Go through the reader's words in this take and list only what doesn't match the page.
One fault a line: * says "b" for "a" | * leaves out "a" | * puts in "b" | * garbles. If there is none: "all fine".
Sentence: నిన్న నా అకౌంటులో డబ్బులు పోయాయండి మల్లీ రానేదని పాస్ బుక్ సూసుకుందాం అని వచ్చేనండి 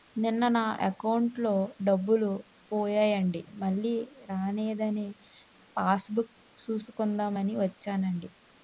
all fine